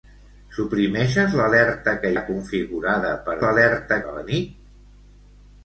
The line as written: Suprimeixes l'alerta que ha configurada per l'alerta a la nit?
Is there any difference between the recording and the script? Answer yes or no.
no